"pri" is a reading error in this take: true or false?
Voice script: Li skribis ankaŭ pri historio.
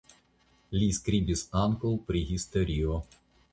false